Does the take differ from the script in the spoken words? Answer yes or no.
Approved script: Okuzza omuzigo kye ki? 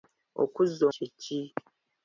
yes